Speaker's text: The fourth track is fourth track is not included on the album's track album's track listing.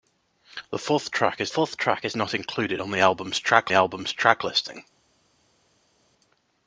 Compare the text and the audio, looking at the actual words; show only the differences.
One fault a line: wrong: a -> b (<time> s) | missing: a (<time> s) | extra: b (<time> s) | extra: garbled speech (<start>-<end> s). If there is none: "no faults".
no faults